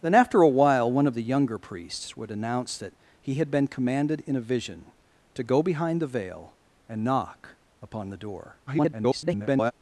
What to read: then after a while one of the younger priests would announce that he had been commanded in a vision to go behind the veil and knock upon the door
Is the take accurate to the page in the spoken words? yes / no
no